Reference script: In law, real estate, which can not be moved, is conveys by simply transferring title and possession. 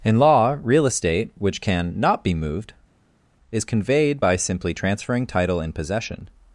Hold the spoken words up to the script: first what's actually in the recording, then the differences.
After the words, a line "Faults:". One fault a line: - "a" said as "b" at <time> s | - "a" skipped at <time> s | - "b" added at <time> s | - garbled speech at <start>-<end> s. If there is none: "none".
In law, real estate, which can not be moved, is conveyed by simply transferring title and possession.
Faults:
- "conveys" said as "conveyed" at 3.6 s